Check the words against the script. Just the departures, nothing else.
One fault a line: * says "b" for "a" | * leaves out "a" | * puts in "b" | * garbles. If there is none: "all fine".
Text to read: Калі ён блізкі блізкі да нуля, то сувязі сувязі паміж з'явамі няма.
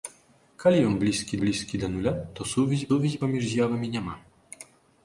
all fine